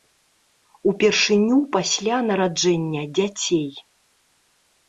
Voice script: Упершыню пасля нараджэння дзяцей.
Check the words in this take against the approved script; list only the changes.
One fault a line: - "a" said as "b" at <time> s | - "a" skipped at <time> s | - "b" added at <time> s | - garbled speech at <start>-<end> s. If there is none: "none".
none